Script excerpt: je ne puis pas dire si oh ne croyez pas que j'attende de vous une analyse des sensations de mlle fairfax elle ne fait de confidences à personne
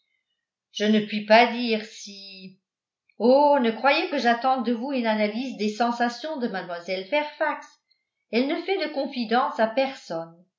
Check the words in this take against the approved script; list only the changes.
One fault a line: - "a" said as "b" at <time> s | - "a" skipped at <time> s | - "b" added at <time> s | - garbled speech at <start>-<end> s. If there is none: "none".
- "pas" skipped at 4.1 s